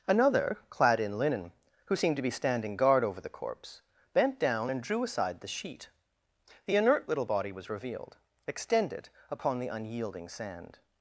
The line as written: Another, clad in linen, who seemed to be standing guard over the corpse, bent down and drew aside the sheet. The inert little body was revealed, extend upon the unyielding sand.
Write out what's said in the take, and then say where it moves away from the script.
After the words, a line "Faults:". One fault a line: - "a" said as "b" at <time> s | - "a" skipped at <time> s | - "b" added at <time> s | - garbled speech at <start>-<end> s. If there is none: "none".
Another, clad in linen, who seemed to be standing guard over the corpse, bent down and drew aside the sheet. The inert little body was revealed, extended upon the unyielding sand.
Faults:
- "extend" said as "extended" at 8.5 s